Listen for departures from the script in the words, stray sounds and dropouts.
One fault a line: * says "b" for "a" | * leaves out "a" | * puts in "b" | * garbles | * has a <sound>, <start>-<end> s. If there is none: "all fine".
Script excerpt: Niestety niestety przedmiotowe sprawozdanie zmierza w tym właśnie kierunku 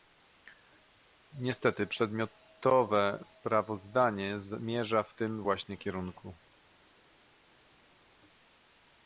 * leaves out "niestety"